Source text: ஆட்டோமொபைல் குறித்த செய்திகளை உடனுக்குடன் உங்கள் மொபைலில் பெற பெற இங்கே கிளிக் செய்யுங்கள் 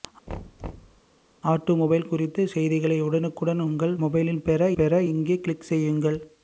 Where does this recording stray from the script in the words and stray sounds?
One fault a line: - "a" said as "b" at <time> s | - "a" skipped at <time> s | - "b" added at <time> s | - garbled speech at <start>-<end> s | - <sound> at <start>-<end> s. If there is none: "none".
- thud at 0.3-1.0 s